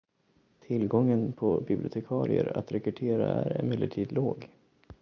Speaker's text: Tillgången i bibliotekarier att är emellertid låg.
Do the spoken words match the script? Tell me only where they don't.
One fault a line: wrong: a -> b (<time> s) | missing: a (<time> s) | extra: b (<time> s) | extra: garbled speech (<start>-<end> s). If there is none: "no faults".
wrong: i -> på (1.3 s)
extra: rekrytera (2.7 s)